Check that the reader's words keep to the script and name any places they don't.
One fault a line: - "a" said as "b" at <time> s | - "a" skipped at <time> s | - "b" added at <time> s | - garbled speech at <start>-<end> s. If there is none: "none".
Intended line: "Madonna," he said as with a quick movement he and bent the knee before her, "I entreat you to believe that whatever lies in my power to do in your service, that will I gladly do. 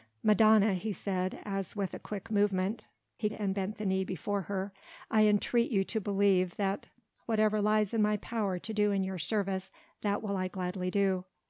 none